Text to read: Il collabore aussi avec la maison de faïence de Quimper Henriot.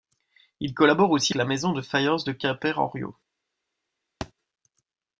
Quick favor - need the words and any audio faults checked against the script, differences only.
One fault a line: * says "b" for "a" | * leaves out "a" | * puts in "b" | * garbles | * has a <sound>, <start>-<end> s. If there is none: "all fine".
* leaves out "avec"
* has a thud, 4.2-4.3 s